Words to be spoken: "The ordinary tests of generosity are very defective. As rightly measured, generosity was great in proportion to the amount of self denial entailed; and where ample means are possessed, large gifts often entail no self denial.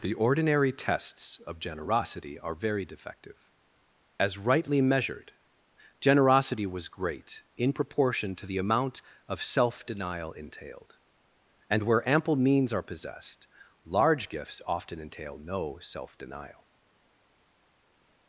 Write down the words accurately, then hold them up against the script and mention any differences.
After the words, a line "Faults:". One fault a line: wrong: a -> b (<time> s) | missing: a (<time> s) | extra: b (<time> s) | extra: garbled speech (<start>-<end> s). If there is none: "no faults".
"The ordinary tests of generosity are very defective. As rightly measured, generosity was great in proportion to the amount of self denial entailed; and where ample means are possessed, large gifts often entail no self denial.
Faults:
no faults